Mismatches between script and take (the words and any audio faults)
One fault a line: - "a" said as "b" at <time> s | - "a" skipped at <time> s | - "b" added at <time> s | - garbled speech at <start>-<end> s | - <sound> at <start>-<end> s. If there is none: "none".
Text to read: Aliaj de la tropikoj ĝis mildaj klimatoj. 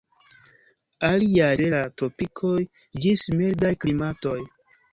none